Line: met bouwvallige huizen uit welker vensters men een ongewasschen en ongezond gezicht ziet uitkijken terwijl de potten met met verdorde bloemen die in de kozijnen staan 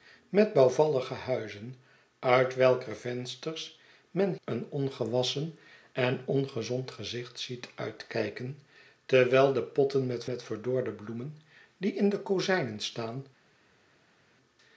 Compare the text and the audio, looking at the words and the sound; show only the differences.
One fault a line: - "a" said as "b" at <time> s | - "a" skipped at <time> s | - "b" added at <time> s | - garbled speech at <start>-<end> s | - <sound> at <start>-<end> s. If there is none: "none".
none